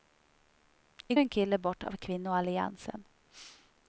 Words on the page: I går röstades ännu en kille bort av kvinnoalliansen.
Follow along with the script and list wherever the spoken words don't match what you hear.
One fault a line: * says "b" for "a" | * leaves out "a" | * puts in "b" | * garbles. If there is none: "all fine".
* leaves out "går röstades ännu"